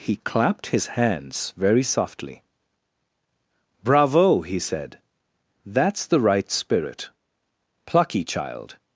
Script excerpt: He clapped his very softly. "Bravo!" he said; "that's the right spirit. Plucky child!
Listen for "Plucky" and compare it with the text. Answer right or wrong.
right